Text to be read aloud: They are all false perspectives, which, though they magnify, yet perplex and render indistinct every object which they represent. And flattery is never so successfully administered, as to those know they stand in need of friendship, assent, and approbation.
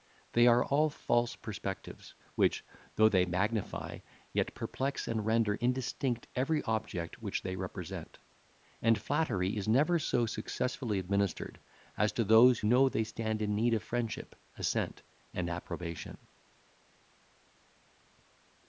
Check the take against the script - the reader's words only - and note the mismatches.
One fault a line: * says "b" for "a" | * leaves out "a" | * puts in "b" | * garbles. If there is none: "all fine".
all fine